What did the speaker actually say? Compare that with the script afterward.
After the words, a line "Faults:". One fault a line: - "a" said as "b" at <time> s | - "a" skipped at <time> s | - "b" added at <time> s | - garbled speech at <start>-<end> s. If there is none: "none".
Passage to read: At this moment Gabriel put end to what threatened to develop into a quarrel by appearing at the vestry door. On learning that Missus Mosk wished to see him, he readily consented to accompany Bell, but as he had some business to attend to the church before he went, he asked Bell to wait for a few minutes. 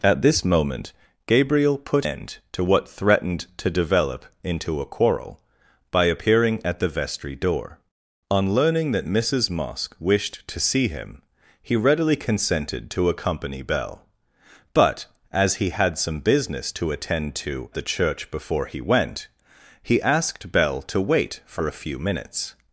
At this moment Gabriel put end to what threatened to develop into a quarrel by appearing at the vestry door. On learning that Missus Mosk wished to see him, he readily consented to accompany Bell, but as he had some business to attend to the church before he went, he asked Bell to wait for a few minutes.
Faults:
none